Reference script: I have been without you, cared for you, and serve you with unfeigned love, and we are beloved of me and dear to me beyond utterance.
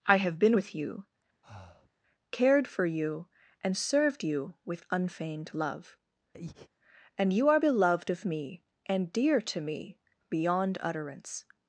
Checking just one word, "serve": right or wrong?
wrong